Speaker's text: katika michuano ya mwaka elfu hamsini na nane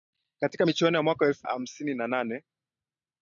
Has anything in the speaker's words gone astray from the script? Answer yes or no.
no